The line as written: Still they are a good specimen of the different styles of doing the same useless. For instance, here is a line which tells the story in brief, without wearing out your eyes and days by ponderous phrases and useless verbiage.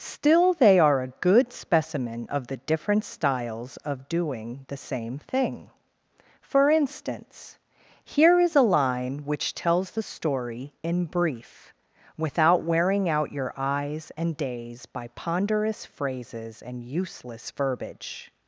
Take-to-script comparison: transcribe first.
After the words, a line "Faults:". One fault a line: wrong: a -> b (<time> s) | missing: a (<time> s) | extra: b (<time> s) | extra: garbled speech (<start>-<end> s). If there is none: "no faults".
Still they are a good specimen of the different styles of doing the same thing. For instance, here is a line which tells the story in brief, without wearing out your eyes and days by ponderous phrases and useless verbiage.
Faults:
wrong: useless -> thing (5.2 s)